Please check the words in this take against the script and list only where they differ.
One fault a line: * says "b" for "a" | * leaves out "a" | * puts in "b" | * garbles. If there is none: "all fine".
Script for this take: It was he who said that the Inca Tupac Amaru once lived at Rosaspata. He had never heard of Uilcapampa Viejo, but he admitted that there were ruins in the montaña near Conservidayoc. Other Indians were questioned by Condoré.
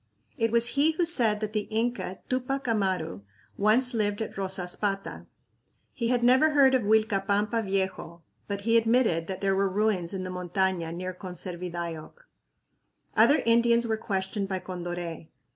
all fine